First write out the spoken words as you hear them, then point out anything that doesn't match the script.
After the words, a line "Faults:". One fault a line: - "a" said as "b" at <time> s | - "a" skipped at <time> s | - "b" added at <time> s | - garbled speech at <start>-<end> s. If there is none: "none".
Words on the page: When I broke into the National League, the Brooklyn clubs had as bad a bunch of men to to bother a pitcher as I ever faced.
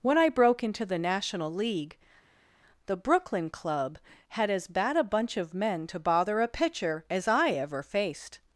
When I broke into the National League, the Brooklyn club had as bad a bunch of men to bother a pitcher as I ever faced.
Faults:
- "clubs" said as "club" at 3.5 s
- "to" skipped at 6.0 s